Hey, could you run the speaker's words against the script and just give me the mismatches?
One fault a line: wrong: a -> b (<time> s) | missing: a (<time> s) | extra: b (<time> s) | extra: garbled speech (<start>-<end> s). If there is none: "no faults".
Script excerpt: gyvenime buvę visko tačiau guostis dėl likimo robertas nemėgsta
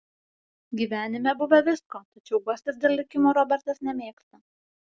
no faults